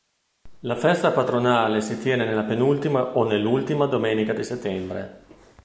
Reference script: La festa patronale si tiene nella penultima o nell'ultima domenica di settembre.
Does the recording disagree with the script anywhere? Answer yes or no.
no